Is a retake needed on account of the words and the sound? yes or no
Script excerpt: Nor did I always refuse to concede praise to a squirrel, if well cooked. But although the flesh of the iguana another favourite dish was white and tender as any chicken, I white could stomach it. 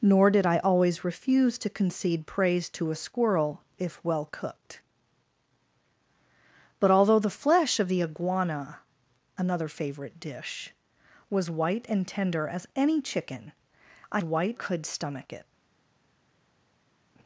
no